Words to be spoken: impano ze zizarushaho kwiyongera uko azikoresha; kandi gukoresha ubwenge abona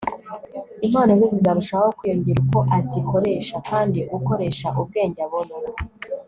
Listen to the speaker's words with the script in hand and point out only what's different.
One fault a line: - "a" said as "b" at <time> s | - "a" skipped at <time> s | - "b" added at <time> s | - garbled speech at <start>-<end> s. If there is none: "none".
none